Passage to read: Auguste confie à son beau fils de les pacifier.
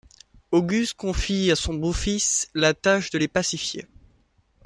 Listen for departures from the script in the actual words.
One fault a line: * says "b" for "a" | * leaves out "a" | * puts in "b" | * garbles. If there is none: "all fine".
* puts in "la tâche"